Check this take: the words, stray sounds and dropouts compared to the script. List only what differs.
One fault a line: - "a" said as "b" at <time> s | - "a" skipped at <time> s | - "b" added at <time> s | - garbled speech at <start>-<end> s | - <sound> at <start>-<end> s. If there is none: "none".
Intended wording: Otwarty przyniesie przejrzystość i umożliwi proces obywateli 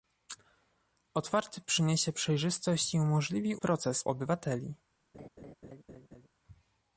- laugh at 5.1-6.3 s